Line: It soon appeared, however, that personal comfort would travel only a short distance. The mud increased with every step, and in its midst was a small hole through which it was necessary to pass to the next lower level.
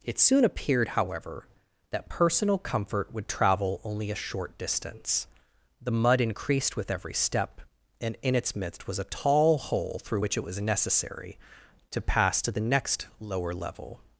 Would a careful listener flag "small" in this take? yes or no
yes